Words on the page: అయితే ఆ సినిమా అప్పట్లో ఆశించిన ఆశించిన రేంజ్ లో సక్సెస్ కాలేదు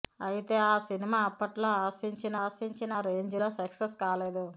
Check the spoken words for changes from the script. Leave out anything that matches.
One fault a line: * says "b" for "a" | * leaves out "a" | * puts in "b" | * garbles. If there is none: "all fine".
all fine